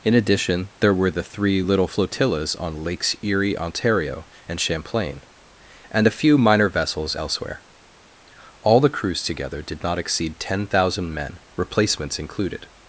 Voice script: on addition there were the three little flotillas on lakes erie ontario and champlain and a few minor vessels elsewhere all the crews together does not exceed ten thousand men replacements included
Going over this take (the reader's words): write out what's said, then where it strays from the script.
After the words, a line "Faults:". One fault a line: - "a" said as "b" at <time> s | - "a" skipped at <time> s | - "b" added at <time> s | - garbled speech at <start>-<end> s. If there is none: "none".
in addition there were the three little flotillas on lakes erie ontario and champlain and a few minor vessels elsewhere all the crews together did not exceed ten thousand men replacements included
Faults:
- "on" said as "in" at 0.0 s
- "does" said as "did" at 9.6 s